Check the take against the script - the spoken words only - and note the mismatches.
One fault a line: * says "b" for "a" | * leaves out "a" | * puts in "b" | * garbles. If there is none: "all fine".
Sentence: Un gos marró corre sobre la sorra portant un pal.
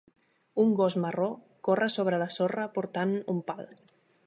all fine